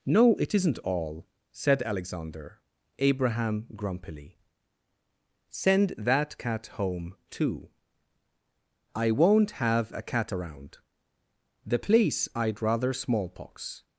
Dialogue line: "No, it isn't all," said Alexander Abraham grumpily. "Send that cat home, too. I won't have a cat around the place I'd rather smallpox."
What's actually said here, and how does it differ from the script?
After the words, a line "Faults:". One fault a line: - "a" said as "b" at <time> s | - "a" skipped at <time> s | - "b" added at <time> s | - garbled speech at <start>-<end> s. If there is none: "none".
"No, it isn't all," said Alexander Abraham grumpily. "Send that cat home, too. I won't have a cat around the place I'd rather smallpox."
Faults:
none